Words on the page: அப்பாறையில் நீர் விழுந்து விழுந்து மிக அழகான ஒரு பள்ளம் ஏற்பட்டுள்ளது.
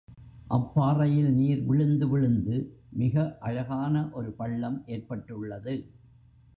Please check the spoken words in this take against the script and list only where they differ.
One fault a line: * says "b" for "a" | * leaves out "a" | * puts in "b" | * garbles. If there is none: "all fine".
all fine